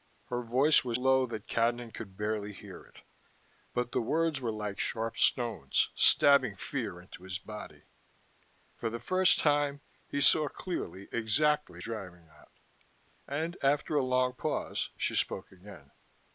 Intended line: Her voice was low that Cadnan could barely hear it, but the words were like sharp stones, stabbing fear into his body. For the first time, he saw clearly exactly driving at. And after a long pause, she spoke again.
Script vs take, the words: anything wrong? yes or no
no